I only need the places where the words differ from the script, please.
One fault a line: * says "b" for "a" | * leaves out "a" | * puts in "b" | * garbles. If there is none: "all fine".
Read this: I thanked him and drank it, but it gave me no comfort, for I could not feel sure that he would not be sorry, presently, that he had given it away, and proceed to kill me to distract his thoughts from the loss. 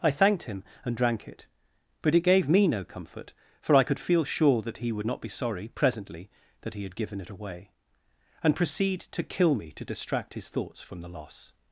* leaves out "not"